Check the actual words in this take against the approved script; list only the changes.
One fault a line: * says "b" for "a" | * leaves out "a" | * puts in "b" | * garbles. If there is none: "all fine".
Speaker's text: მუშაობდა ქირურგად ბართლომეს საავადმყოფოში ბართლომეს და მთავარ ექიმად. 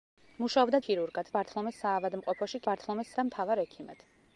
all fine